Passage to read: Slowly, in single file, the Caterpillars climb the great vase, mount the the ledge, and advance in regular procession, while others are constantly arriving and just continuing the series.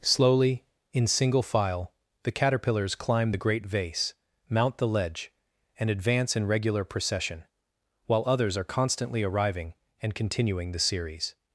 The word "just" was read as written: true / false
false